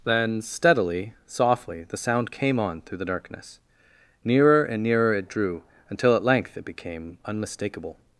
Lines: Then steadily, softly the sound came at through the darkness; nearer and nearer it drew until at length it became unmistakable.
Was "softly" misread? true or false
false